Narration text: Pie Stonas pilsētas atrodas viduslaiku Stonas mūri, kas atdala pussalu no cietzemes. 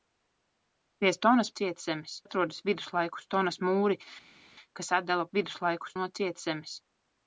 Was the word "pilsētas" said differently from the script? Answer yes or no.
yes